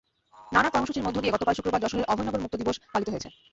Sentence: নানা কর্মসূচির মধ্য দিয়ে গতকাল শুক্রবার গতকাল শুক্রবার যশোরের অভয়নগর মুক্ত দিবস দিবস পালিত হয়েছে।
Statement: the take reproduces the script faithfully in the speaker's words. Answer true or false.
false